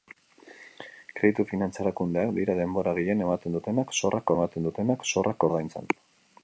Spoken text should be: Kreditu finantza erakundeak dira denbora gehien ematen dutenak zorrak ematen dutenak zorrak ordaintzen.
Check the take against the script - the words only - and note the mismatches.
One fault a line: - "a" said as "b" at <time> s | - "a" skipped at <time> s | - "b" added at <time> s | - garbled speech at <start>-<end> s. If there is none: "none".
none